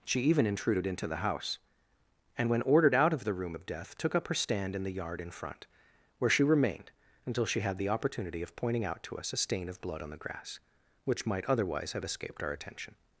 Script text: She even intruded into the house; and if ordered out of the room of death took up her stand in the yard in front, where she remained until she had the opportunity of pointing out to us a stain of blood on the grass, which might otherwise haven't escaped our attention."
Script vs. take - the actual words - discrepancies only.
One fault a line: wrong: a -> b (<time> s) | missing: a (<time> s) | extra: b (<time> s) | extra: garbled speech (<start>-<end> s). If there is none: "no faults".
wrong: if -> when (2.5 s)
wrong: haven't -> have (11.9 s)